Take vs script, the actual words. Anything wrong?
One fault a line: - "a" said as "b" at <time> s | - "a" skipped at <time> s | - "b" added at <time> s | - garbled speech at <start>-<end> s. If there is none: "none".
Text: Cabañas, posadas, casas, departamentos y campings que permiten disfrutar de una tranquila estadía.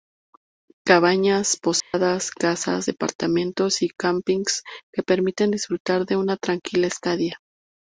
none